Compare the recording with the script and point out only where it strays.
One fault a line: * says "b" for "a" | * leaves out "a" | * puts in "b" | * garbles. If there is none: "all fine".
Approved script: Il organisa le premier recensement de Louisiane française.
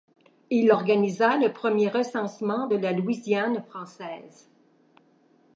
* puts in "la"